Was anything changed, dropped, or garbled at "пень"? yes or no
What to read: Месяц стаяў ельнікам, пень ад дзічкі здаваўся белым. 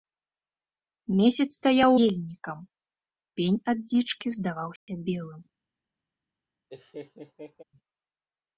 no